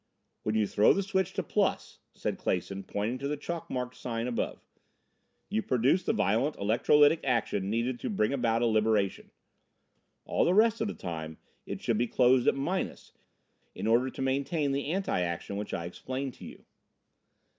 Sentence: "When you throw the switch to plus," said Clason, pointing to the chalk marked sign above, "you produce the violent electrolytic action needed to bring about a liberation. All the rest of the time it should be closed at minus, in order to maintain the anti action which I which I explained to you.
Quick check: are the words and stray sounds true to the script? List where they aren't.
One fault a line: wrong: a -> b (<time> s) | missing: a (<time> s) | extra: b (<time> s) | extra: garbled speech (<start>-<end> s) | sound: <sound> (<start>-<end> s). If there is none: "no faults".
missing: which I (15.9 s)